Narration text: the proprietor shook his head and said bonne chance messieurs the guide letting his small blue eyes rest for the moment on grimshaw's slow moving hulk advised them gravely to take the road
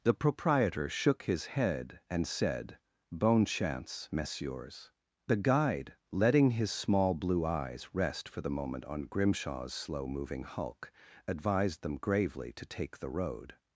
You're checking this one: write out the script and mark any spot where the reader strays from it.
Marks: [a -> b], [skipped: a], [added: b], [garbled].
the proprietor shook his head and said bonne chance messieurs the guide letting his small blue eyes rest for the moment on grimshaw's slow moving hulk advised them gravely to take the road